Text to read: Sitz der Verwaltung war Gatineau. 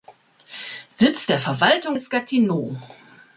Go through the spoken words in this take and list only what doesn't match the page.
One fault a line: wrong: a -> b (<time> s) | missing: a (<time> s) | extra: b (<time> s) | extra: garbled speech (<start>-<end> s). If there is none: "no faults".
wrong: war -> ist (1.9 s)